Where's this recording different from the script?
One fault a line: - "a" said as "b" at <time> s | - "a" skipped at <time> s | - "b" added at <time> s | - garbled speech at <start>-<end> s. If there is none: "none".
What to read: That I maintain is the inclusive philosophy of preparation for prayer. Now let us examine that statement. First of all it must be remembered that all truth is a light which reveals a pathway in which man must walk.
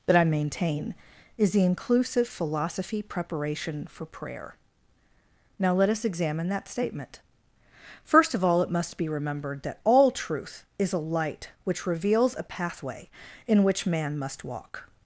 - "of" skipped at 3.0 s